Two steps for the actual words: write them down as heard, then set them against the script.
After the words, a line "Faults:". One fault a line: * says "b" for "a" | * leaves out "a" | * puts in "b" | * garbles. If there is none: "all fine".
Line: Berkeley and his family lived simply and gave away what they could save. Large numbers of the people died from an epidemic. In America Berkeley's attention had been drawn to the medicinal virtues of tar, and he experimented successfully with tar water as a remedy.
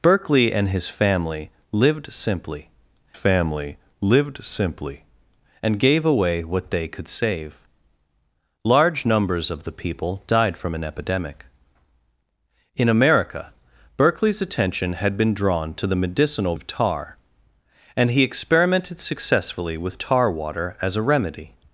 Berkeley and his family lived simply family lived simply and gave away what they could save. Large numbers of the people died from an epidemic. In America Berkeley's attention had been drawn to the medicinal of tar, and he experimented successfully with tar water as a remedy.
Faults:
* puts in "family lived simply"
* leaves out "virtues"